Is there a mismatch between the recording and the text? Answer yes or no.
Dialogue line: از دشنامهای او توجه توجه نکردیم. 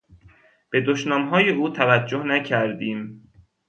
yes